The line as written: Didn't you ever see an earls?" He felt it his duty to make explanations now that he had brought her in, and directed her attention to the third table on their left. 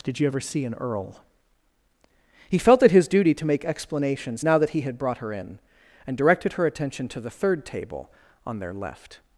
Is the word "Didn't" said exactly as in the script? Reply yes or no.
no